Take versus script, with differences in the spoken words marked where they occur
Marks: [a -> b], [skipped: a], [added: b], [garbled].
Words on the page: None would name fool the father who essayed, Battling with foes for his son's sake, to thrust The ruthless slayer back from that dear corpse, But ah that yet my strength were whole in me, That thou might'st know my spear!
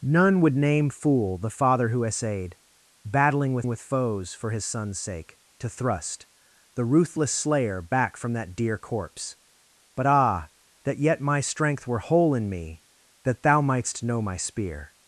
None would name fool the father who essayed, Battling with [added: with] foes for his son's sake, to thrust The ruthless slayer back from that dear corpse, But ah that yet my strength were whole in me, That thou might'st know my spear!